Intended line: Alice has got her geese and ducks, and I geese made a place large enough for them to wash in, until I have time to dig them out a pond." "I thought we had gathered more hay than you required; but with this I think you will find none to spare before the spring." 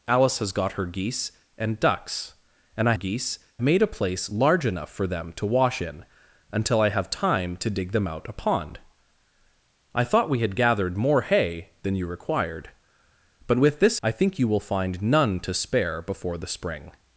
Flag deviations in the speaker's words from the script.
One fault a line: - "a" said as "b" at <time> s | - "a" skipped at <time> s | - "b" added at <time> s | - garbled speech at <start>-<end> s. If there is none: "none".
none